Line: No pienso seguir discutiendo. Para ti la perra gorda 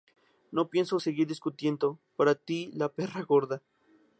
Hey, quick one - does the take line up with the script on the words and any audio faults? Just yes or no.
yes